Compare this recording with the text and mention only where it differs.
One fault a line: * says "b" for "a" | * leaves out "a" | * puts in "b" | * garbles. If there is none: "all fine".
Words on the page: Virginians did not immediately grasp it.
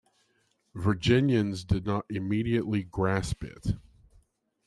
all fine